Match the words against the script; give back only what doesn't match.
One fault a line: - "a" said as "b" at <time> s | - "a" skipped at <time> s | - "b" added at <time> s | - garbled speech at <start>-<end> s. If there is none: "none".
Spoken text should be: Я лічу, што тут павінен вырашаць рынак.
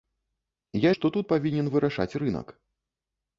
- "лічу" skipped at 0.9 s